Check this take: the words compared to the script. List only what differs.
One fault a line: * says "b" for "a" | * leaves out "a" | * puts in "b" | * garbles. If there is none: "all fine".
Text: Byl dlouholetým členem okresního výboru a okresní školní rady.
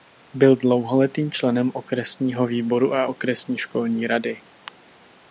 all fine